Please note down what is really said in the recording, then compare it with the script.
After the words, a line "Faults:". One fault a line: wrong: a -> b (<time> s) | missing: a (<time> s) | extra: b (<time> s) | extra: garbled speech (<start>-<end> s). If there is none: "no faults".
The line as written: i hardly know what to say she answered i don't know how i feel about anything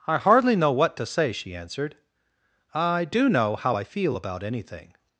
i hardly know what to say she answered i do know how i feel about anything
Faults:
wrong: don't -> do (3.0 s)